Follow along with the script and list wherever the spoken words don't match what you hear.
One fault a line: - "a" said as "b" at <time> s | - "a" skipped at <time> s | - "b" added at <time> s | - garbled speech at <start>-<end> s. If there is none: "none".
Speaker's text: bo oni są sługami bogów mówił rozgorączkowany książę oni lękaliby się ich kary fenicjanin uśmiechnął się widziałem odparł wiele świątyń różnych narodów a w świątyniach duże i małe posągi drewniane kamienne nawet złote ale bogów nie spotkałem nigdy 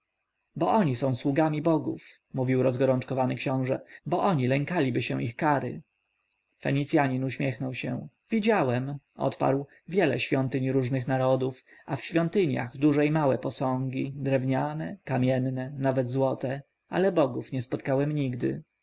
- "bo" added at 4.0 s